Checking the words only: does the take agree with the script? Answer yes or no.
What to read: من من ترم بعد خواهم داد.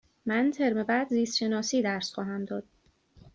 no